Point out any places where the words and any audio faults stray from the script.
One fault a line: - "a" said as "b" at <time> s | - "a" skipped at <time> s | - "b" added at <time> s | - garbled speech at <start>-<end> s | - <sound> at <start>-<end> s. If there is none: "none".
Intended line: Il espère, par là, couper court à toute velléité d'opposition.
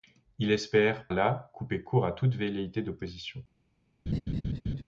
- "par" skipped at 1.1 s
- laugh at 4.1-4.8 s